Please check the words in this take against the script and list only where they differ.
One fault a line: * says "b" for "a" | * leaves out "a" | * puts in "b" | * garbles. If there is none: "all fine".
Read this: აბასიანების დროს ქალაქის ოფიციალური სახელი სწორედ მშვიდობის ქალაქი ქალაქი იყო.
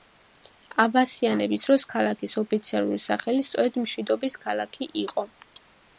* leaves out "ქალაქი"